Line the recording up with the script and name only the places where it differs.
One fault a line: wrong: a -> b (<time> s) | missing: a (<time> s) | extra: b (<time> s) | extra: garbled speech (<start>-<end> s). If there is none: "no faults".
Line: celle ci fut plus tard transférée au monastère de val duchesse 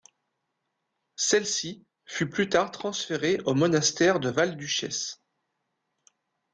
no faults